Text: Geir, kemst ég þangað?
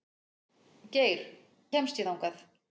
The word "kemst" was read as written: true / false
true